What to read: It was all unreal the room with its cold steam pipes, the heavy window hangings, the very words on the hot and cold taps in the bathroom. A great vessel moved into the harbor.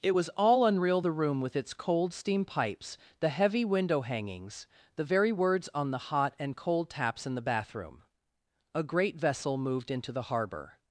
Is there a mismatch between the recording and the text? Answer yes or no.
no